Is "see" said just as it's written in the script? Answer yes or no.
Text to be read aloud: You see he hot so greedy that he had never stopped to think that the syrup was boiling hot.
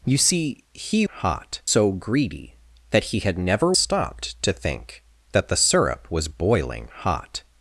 yes